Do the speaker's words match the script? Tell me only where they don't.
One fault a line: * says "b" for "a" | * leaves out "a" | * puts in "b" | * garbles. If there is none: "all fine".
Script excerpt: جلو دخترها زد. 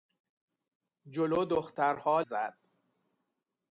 all fine